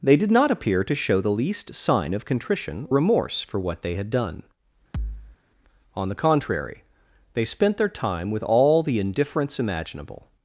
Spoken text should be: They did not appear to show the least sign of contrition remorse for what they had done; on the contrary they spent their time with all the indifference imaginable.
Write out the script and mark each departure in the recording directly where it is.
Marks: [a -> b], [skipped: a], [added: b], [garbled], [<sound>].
They did not appear to show the least sign of contrition remorse for what they had done; [thud] on the contrary they spent their time with all the indifference imaginable.